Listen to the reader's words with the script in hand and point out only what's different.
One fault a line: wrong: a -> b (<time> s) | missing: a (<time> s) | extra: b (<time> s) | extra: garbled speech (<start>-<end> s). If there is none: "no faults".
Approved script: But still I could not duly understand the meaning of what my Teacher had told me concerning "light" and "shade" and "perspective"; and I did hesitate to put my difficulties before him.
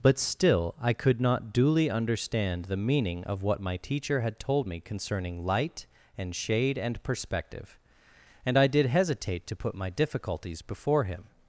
no faults